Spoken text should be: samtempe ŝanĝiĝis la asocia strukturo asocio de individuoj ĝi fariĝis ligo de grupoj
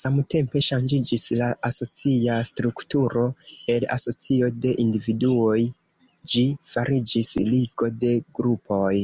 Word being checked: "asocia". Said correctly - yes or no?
yes